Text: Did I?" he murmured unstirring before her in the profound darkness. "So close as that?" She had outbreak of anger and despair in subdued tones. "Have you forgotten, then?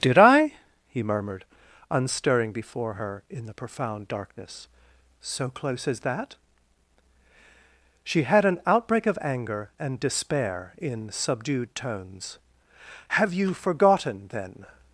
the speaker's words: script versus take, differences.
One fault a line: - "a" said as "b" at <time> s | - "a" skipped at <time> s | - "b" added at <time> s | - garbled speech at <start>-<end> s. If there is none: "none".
- "an" added at 8.4 s